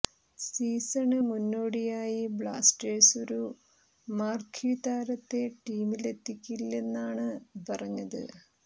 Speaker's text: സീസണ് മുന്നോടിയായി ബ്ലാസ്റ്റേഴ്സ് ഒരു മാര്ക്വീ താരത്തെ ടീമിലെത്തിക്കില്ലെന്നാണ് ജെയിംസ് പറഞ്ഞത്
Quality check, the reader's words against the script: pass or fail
fail